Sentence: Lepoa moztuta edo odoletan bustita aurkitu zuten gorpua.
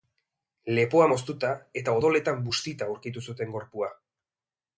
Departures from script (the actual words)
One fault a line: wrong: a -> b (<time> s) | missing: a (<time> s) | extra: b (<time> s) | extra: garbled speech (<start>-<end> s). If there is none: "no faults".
wrong: edo -> eta (1.8 s)